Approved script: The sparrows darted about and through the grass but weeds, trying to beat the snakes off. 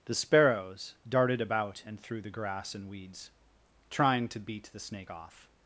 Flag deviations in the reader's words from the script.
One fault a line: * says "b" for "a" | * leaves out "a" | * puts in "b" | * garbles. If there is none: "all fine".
* says "and" for "but"
* says "snake" for "snakes"